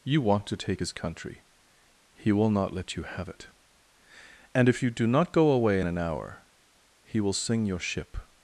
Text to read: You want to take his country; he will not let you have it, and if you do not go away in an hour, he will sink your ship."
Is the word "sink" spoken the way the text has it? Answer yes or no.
no